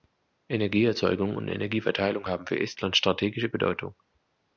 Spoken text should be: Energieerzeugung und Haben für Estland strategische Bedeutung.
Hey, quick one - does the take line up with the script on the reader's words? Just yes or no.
no